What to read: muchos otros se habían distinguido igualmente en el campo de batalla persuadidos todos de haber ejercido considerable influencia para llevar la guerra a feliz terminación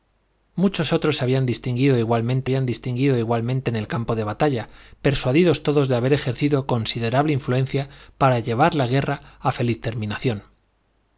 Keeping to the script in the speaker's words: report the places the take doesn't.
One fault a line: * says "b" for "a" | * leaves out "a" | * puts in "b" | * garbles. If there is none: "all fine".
* puts in "habían distinguido igualmente"